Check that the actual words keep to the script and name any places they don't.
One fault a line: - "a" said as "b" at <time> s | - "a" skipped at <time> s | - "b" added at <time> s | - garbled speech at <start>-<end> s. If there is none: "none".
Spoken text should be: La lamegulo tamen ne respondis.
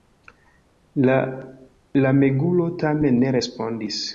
none